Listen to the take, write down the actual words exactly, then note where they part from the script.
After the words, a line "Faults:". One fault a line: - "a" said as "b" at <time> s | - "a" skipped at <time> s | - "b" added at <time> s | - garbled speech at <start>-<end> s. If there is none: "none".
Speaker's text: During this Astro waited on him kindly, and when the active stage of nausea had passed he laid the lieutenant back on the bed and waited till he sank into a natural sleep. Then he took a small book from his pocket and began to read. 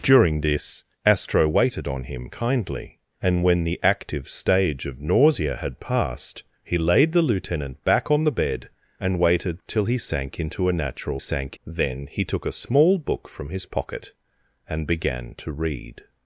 During this Astro waited on him kindly, and when the active stage of nausea had passed he laid the lieutenant back on the bed and waited till he sank into a natural sank. Then he took a small book from his pocket and began to read.
Faults:
- "sleep" said as "sank" at 11.2 s